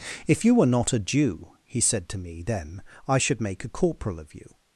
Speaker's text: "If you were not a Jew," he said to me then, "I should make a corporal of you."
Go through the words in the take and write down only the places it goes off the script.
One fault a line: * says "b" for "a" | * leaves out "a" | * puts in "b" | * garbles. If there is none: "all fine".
all fine